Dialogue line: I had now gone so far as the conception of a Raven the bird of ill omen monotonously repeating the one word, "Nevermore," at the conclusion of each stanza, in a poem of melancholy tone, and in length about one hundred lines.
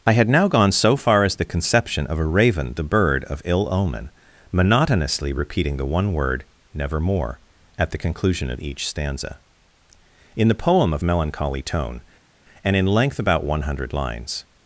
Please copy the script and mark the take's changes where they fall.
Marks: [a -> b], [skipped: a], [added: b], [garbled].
I had now gone so far as the conception of a Raven the bird of ill omen monotonously repeating the one word, "Nevermore," at the conclusion of each stanza, in [a -> the] poem of melancholy tone, and in length about one hundred lines.